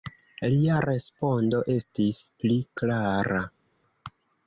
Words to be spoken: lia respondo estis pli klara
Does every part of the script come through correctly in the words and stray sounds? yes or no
yes